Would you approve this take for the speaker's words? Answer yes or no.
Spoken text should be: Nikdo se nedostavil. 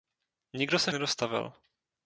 yes